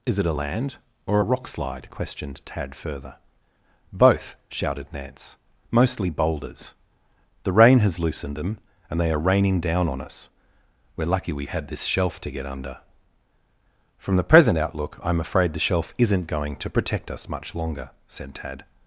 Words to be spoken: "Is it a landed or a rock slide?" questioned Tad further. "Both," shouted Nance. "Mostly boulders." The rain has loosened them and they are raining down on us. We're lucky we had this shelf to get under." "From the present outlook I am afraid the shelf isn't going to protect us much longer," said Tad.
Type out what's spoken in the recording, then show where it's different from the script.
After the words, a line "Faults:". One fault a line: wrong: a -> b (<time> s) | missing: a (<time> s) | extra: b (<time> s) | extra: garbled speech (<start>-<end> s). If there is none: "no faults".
"Is it a land or a rock slide?" questioned Tad further. "Both," shouted Nance. "Mostly boulders." The rain has loosened them and they are raining down on us. We're lucky we had this shelf to get under." "From the present outlook I am afraid the shelf isn't going to protect us much longer," said Tad.
Faults:
wrong: landed -> land (0.3 s)